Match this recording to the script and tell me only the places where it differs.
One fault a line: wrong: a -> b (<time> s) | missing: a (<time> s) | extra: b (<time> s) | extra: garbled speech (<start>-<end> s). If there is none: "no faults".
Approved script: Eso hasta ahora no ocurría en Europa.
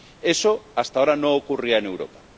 no faults